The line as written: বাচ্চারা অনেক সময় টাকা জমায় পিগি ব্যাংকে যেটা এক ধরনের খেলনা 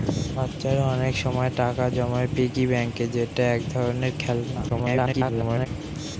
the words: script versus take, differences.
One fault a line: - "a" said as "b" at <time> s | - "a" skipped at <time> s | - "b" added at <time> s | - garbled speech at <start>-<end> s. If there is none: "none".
- garbled speech at 4.7-5.7 s